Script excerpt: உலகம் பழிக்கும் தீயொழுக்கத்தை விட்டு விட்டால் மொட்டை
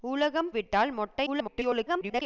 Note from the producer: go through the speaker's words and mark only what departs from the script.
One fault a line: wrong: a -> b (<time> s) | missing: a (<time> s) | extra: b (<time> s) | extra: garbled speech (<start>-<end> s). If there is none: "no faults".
missing: பழிக்கும் தீயொழுக்கத்தை விட்டு (0.5 s)
extra: garbled speech (1.3-2.2 s)